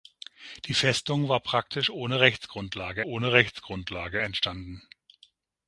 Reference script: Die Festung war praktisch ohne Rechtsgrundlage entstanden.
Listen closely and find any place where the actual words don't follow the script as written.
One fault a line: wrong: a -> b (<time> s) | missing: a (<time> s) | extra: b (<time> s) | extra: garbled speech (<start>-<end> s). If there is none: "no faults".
extra: ohne Rechtsgrundlage (3.0 s)